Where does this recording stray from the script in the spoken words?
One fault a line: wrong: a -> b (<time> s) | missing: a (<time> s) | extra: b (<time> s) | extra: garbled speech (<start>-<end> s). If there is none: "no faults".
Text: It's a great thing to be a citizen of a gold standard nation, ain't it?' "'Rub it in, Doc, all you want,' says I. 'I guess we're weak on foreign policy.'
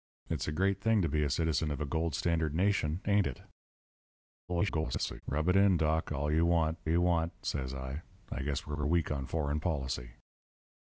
extra: garbled speech (4.5-5.2 s)
extra: you want (6.9 s)
extra: we're (8.8 s)